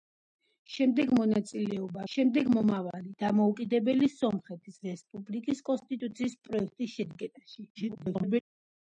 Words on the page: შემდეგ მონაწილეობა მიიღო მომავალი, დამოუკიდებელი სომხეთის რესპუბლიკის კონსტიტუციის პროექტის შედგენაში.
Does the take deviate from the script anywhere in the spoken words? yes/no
yes